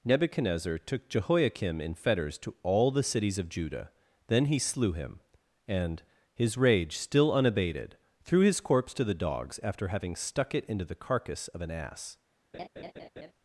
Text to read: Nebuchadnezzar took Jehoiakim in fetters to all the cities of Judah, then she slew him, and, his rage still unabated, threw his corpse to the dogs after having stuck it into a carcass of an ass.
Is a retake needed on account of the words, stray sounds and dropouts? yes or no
yes